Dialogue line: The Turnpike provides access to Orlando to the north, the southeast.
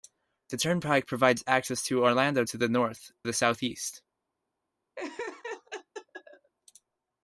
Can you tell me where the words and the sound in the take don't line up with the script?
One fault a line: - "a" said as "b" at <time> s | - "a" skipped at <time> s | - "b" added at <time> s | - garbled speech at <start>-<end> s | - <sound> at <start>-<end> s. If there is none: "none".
- laugh at 5.0-6.5 s